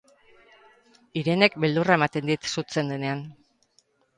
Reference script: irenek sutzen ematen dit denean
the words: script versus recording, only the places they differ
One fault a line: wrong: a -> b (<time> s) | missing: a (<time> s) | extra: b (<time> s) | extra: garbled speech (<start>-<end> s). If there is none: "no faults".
wrong: sutzen -> beldurra (1.6 s)
extra: sutzen (2.5 s)